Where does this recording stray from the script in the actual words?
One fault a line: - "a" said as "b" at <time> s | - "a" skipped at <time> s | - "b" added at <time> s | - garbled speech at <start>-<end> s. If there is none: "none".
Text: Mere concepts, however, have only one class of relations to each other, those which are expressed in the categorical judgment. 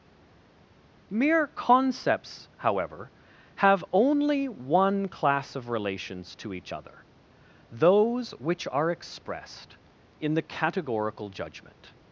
none